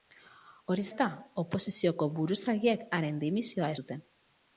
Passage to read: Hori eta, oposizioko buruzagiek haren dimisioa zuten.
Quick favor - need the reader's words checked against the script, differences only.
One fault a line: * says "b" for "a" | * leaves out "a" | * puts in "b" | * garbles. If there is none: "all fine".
all fine